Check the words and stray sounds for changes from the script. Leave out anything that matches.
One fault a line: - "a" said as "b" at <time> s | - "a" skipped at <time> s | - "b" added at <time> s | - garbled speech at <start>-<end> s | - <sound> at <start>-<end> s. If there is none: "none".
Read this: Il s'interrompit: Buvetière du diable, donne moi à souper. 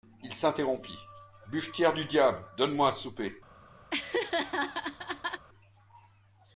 - laugh at 3.9-5.5 s